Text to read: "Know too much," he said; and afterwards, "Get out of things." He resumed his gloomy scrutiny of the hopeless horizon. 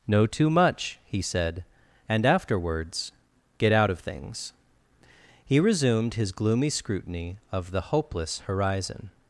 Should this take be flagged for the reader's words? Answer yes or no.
no